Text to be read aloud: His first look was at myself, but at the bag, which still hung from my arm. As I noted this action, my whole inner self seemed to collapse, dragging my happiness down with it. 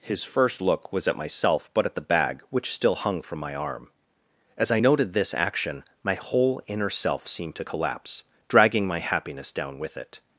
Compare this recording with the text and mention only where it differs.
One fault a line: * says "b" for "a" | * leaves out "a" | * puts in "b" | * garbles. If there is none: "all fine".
all fine